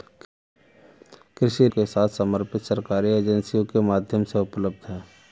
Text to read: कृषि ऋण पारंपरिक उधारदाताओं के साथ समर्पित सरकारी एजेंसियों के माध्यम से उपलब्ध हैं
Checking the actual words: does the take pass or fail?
fail